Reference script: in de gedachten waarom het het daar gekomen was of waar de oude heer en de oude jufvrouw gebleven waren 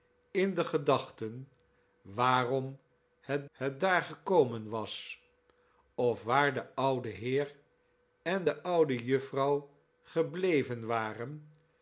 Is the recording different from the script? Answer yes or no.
no